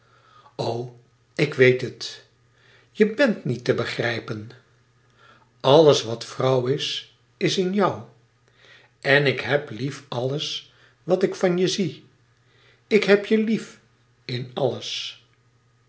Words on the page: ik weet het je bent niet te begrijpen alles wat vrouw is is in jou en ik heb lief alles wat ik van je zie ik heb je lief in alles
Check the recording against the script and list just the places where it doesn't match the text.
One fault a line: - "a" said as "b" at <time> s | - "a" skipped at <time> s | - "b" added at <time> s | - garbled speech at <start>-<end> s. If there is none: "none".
none